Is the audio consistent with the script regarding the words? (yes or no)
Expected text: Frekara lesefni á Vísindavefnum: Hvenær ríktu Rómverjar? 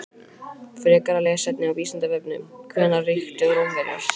yes